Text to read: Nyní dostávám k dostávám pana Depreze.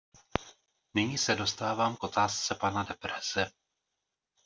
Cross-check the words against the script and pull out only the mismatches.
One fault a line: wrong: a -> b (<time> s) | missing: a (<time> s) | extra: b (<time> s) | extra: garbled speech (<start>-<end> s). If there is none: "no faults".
extra: se (1.2 s)
wrong: dostávám -> otázce (2.0 s)